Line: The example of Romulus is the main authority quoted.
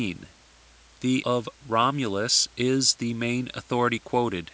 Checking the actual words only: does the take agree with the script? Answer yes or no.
no